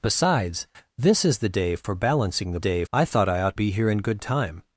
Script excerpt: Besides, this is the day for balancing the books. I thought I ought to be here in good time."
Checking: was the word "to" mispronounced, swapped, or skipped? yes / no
yes